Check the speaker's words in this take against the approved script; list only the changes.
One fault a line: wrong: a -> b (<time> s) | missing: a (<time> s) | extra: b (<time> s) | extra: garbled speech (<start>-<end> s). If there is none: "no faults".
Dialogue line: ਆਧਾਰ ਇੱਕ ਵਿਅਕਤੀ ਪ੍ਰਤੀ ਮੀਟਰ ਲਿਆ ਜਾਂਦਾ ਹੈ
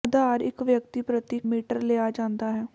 no faults